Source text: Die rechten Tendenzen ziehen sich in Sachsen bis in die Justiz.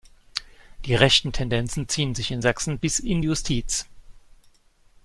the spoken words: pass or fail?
fail